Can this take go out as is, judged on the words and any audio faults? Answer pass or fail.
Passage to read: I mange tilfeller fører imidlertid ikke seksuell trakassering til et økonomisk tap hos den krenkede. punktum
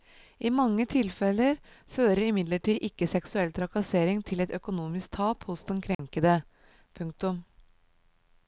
fail